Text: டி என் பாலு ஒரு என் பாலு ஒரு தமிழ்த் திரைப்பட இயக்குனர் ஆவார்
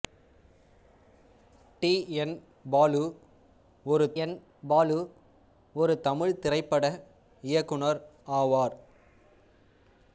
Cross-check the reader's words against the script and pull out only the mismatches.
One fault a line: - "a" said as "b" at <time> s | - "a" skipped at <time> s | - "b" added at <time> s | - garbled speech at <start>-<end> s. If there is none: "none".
none